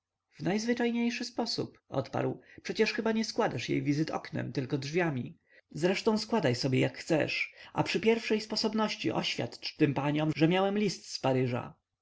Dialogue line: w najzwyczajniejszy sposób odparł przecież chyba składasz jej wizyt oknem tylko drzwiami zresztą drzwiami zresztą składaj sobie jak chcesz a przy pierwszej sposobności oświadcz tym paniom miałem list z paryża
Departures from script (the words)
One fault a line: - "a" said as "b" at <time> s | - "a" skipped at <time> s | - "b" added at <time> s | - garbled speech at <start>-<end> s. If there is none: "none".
- "nie" added at 3.1 s
- "drzwiami zresztą" skipped at 6.2 s
- "że" added at 10.4 s